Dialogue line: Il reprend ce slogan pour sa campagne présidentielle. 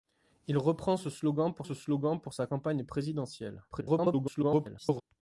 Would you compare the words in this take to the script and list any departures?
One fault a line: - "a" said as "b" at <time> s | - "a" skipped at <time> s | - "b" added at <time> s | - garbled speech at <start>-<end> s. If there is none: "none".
- "ce slogan pour" added at 1.6 s
- garbled speech at 3.7-5.0 s